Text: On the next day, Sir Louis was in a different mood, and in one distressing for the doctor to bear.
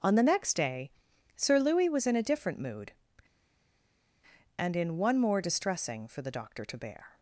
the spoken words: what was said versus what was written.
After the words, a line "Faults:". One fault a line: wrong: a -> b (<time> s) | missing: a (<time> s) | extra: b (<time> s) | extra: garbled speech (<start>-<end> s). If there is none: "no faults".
On the next day, Sir Louis was in a different mood, and in one more distressing for the doctor to bear.
Faults:
extra: more (5.2 s)